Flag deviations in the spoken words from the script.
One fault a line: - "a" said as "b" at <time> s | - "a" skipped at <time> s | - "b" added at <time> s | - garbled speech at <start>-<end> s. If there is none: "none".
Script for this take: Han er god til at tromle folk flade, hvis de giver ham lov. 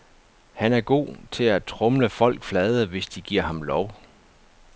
none